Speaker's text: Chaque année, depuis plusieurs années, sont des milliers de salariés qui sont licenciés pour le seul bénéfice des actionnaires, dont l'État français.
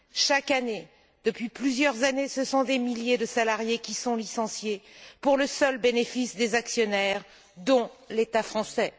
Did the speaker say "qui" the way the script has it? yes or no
yes